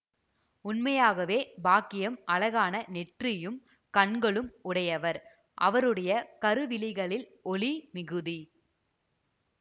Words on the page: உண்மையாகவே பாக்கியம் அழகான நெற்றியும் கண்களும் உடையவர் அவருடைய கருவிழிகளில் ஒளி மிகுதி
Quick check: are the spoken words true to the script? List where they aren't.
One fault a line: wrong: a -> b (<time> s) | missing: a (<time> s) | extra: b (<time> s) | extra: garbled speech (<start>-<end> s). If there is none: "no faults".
no faults